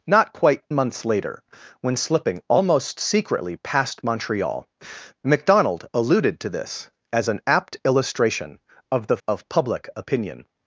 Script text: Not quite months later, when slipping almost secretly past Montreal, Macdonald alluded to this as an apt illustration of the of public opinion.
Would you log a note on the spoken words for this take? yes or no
no